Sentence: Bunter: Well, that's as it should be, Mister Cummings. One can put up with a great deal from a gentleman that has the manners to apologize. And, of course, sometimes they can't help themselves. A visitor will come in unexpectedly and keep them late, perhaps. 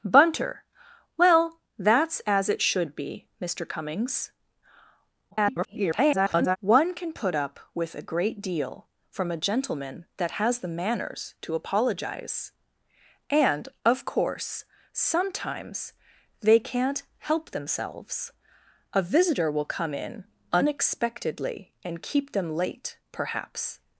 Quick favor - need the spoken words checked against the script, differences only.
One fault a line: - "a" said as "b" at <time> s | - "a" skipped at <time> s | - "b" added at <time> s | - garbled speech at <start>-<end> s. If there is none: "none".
- garbled speech at 5.3-6.6 s